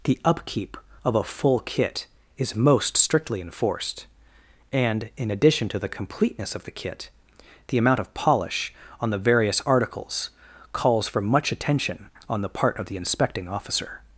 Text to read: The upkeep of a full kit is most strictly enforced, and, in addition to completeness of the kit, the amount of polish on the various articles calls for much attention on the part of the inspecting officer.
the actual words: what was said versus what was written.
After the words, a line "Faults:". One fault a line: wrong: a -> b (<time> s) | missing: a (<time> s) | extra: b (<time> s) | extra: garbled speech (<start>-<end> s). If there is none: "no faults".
The upkeep of a full kit is most strictly enforced, and, in addition to the completeness of the kit, the amount of polish on the various articles calls for much attention on the part of the inspecting officer.
Faults:
extra: the (5.8 s)